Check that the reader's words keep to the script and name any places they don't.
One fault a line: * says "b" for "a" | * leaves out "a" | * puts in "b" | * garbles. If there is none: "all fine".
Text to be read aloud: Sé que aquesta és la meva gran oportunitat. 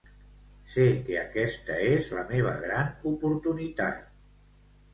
all fine